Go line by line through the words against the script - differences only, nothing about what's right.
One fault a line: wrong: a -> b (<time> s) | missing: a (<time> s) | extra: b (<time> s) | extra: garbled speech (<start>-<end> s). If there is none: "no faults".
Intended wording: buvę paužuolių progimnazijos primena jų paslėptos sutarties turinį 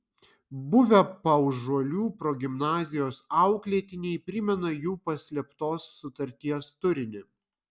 extra: auklėtiniai (3.4 s)